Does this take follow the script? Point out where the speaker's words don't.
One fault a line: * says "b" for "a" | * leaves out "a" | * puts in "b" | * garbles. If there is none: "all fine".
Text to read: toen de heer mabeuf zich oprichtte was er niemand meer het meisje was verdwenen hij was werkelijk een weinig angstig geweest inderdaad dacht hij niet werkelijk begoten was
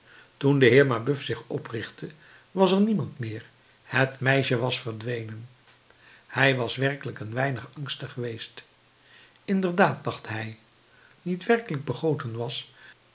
all fine